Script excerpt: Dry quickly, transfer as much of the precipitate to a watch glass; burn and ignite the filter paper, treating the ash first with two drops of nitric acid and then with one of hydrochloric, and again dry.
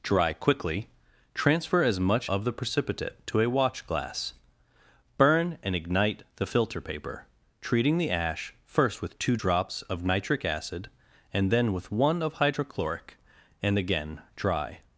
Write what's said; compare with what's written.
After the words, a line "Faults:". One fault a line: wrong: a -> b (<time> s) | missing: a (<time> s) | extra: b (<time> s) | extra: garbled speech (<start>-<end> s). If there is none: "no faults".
Dry quickly, transfer as much of the precipitate to a watch glass; burn and ignite the filter paper, treating the ash first with two drops of nitric acid and then with one of hydrochloric, and again dry.
Faults:
no faults